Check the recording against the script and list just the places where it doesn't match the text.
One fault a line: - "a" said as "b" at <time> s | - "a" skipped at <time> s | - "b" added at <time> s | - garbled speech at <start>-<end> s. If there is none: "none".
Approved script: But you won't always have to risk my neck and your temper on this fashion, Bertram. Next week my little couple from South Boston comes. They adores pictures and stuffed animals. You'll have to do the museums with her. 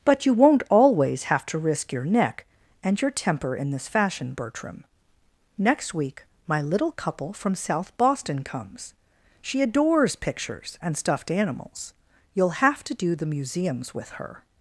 - "my" said as "your" at 1.9 s
- "on" said as "in" at 3.5 s
- "They" said as "She" at 9.4 s